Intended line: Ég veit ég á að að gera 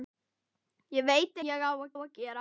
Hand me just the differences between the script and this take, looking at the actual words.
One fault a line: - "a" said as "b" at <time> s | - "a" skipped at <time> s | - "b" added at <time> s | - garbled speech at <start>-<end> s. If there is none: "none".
none